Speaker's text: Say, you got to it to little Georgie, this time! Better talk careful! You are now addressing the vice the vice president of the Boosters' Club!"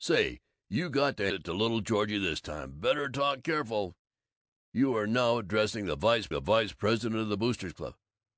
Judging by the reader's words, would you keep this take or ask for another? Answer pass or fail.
pass